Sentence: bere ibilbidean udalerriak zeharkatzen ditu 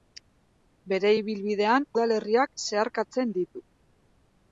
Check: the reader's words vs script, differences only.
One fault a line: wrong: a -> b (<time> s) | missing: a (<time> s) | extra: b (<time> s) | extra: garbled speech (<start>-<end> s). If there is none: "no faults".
no faults